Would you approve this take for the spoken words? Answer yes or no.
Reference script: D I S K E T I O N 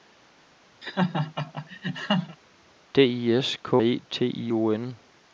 yes